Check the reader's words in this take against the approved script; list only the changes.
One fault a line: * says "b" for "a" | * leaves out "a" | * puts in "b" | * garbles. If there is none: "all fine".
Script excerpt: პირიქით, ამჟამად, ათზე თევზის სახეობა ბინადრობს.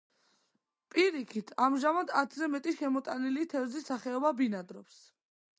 * puts in "მეტი შემოტანილი"